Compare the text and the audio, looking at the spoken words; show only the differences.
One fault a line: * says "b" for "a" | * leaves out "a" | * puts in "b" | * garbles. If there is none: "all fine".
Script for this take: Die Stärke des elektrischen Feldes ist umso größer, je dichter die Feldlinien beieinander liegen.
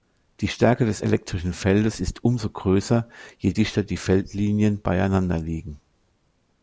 all fine